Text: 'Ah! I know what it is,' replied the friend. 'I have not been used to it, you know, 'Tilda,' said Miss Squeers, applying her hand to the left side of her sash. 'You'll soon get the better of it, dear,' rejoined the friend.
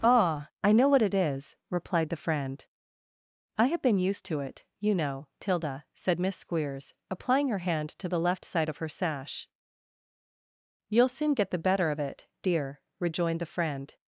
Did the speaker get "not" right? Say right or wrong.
wrong